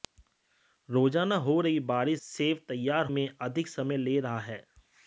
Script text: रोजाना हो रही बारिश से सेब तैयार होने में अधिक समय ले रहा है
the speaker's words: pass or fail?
fail